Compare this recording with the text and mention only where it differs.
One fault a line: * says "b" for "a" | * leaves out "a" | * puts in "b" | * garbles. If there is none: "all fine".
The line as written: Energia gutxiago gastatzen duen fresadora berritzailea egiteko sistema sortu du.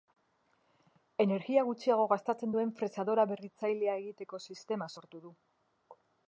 all fine